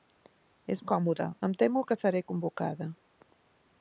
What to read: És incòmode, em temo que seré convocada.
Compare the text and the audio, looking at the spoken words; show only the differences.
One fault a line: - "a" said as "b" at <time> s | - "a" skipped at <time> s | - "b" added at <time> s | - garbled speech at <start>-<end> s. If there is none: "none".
none